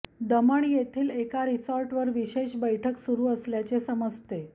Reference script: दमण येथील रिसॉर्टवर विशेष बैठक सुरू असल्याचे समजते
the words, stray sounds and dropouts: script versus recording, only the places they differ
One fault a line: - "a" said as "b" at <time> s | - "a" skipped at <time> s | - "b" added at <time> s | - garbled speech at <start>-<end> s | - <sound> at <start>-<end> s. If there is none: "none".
- "एका" added at 1.1 s